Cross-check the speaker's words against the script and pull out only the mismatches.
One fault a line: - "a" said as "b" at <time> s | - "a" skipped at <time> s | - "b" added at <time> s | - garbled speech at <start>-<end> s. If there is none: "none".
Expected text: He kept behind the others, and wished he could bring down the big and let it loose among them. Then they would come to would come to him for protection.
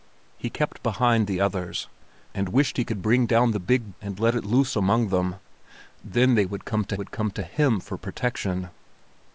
none